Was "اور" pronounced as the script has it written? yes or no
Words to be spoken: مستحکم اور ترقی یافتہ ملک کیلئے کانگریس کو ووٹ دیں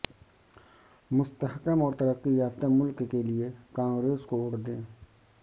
yes